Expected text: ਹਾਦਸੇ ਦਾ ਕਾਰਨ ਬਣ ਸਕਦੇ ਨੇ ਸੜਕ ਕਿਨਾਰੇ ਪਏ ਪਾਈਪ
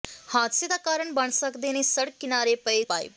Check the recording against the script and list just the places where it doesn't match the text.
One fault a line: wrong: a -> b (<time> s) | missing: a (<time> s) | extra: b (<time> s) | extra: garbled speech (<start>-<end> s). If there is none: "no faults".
no faults